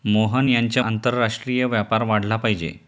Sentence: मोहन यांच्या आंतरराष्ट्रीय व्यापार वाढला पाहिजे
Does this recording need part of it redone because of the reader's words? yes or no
no